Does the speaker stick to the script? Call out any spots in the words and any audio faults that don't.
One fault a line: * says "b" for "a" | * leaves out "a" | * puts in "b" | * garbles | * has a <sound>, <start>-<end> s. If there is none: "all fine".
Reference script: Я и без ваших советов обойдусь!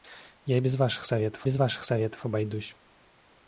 * puts in "без ваших советов"